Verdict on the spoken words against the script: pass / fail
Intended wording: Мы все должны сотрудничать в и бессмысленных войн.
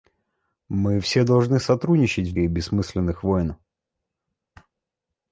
pass